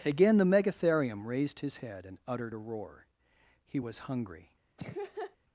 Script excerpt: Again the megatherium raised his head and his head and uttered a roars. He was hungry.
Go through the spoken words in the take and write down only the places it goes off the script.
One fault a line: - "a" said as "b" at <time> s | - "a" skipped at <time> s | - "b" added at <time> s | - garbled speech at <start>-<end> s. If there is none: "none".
- "his head and" skipped at 2.2 s
- "roars" said as "roar" at 2.6 s